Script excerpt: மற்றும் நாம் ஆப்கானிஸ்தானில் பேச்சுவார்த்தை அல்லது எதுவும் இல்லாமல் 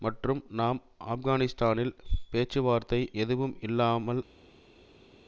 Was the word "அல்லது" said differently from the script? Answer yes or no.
yes